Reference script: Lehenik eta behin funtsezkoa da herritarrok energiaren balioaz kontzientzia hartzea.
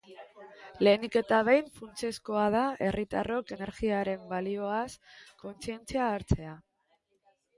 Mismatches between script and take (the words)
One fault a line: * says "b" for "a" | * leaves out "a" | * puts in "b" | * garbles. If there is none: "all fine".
all fine